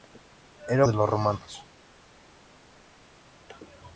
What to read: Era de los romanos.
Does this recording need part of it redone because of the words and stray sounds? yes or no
no